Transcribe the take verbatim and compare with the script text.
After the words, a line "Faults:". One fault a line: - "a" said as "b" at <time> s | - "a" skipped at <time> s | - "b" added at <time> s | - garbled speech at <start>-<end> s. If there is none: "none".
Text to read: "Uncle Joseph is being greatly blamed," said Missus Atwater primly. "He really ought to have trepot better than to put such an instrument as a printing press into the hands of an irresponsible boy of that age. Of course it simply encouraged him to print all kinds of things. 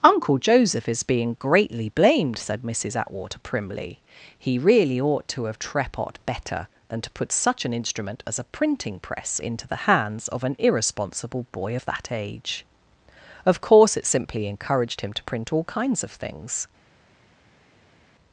"Uncle Joseph is being greatly blamed," said Missus Atwater primly. "He really ought to have trepot better than to put such an instrument as a printing press into the hands of an irresponsible boy of that age. Of course it simply encouraged him to print all kinds of things.
Faults:
none